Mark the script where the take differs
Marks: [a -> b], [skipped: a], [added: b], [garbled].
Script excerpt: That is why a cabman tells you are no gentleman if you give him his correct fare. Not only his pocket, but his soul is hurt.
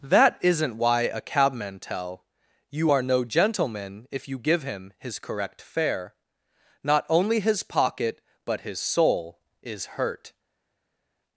That [is -> isn't] why a cabman [tells -> tell] you are no gentleman if you give him his correct fare. Not only his pocket, but his soul is hurt.